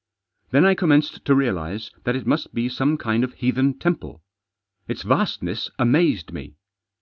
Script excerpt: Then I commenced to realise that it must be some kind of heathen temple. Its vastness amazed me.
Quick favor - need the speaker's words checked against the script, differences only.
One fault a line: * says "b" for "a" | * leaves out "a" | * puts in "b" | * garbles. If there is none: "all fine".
all fine